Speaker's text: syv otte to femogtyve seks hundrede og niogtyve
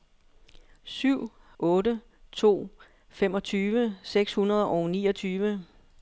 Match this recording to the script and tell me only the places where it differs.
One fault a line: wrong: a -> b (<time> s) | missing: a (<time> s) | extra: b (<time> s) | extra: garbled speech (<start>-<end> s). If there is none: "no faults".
no faults